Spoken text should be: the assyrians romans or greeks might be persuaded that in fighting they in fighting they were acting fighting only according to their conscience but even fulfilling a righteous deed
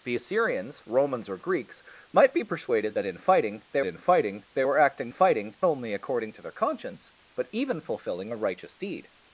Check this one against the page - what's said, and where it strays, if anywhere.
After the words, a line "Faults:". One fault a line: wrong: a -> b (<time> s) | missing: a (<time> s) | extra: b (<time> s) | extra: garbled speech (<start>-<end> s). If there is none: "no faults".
the assyrians romans or greeks might be persuaded that in fighting they in fighting they were acting fighting only according to their conscience but even fulfilling a righteous deed
Faults:
no faults